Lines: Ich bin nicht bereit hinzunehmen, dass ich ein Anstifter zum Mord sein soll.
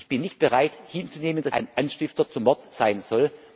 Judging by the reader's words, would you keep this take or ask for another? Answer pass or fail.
fail